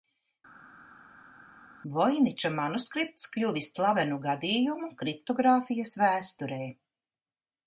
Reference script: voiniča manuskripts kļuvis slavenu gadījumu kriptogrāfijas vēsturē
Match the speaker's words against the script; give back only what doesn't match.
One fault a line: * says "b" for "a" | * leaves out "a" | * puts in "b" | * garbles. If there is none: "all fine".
all fine